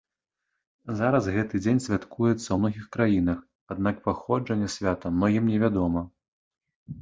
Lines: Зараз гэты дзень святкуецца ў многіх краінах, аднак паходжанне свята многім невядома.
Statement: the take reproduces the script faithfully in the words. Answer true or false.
true